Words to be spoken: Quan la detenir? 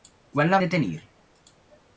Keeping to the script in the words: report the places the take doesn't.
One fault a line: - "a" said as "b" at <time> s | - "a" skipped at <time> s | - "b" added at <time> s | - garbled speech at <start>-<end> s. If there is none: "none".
none